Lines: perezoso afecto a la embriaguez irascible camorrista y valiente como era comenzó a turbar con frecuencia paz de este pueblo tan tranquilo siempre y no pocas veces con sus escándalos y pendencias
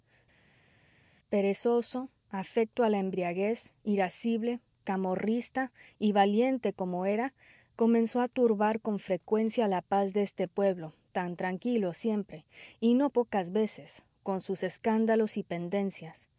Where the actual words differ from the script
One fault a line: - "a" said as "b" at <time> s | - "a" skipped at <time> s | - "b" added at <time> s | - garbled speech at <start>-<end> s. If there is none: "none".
- "la" added at 9.7 s